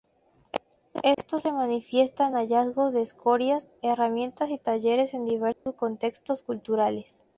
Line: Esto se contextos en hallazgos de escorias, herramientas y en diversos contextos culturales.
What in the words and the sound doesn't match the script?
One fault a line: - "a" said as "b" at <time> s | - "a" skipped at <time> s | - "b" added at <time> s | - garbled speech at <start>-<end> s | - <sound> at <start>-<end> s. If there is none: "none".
- dropout at 1.1-1.2 s
- "contextos" said as "manifiesta" at 1.5 s
- "talleres" added at 4.6 s
- dropout at 5.5-5.7 s